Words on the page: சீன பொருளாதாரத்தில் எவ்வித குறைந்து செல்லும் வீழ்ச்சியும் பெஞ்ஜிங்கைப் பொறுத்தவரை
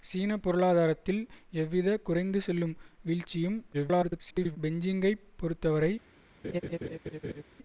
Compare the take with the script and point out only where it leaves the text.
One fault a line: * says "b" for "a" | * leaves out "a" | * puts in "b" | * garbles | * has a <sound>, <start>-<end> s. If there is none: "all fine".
* garbles
* has a laugh, 6.4-7.4 s